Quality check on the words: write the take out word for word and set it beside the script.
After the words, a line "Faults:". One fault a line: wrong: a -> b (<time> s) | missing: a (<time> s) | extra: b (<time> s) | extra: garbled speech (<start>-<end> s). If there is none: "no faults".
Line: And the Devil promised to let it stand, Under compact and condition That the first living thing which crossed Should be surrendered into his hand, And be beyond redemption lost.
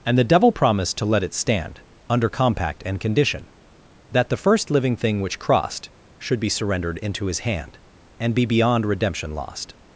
And the Devil promised to let it stand, Under compact and condition That the first living thing which crossed Should be surrendered into his hand, And be beyond redemption lost.
Faults:
no faults